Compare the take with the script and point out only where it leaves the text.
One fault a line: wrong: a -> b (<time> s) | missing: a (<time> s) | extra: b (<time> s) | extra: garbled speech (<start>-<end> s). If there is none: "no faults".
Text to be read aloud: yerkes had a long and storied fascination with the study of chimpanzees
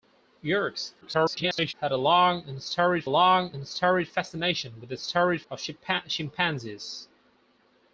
extra: garbled speech (1.0-1.7 s)
extra: long and storied (3.1 s)
wrong: study -> storied (5.0 s)